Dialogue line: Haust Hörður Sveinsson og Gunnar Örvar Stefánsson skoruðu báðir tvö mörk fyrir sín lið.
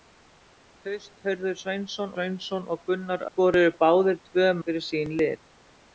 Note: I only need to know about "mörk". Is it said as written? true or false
false